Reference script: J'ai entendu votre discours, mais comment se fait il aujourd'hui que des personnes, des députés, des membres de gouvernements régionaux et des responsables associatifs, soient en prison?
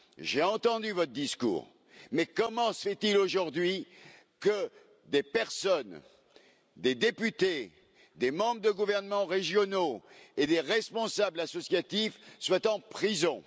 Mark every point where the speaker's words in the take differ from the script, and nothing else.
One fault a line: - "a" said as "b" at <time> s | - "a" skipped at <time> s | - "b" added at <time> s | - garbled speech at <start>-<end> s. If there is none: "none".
none